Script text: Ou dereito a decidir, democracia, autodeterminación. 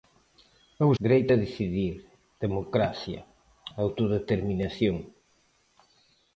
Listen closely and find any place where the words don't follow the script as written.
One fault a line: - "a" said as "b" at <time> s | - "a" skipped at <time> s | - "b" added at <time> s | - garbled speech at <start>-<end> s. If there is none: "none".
none